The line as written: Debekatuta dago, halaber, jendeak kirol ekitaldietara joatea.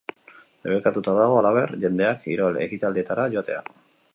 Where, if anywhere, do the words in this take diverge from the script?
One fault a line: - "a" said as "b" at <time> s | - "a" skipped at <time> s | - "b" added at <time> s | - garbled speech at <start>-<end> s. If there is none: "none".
none